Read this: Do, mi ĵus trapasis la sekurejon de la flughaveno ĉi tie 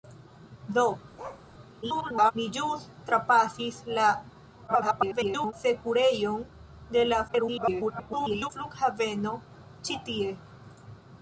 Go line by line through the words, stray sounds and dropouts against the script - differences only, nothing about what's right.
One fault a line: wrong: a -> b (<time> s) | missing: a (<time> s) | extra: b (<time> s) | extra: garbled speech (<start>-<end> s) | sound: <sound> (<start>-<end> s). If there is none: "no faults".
sound: bark (1.2-1.5 s)
extra: garbled speech (1.8-2.3 s)
extra: garbled speech (4.7-5.5 s)
extra: garbled speech (7.3-8.5 s)